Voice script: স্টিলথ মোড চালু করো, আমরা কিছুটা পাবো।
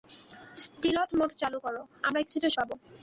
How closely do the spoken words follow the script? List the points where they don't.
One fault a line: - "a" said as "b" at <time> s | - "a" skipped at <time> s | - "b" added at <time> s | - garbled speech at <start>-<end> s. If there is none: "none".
none